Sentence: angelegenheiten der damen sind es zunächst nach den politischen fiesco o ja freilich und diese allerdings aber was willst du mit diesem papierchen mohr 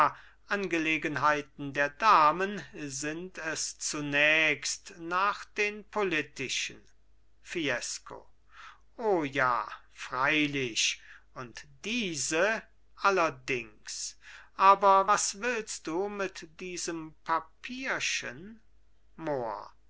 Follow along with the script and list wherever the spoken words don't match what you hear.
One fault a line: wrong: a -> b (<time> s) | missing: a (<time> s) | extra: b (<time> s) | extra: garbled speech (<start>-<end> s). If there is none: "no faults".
no faults